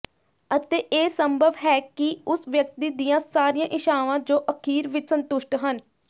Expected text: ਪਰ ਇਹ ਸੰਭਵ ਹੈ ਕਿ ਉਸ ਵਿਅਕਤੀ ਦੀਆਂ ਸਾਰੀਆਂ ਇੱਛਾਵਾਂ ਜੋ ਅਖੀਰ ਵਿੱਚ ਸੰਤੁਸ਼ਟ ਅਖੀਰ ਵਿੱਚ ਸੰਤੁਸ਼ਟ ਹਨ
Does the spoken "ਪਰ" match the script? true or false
false